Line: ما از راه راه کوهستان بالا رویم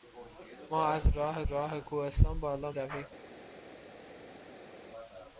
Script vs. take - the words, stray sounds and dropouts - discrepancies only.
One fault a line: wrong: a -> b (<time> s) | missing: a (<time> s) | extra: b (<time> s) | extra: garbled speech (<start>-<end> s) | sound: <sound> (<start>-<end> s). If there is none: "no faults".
no faults